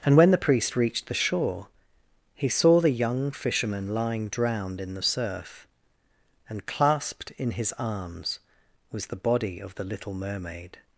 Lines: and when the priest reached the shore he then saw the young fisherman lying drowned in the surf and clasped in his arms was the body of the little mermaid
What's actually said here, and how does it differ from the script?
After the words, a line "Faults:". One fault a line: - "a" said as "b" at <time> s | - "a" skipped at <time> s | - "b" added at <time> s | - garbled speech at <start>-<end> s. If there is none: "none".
and when the priest reached the shore he saw the young fisherman lying drowned in the surf and clasped in his arms was the body of the little mermaid
Faults:
- "then" skipped at 2.5 s